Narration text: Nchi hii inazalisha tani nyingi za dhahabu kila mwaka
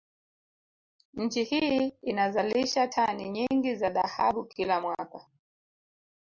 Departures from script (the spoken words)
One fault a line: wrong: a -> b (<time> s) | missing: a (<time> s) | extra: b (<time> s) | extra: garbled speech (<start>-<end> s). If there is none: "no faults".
no faults